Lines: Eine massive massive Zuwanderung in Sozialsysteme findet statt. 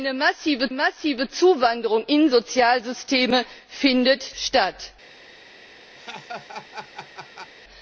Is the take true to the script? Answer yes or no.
yes